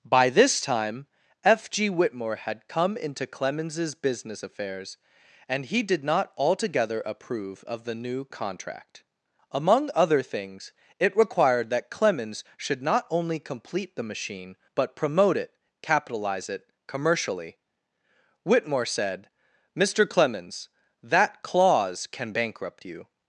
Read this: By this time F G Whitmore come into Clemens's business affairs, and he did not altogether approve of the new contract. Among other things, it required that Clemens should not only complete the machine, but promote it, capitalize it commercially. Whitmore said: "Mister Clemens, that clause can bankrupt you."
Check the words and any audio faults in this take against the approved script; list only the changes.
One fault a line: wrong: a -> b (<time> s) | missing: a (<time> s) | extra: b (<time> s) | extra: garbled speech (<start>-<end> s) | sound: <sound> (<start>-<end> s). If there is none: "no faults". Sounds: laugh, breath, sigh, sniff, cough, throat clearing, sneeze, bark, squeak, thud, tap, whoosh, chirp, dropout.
extra: had (2.4 s)